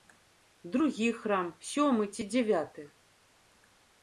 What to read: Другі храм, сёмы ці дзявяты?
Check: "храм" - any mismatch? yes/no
no